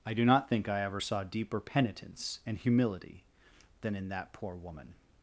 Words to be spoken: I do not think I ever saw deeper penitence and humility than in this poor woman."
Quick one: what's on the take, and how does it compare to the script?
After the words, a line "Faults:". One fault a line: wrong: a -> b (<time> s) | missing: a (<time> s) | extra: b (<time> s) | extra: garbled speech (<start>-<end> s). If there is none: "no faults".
I do not think I ever saw deeper penitence and humility than in that poor woman."
Faults:
wrong: this -> that (4.1 s)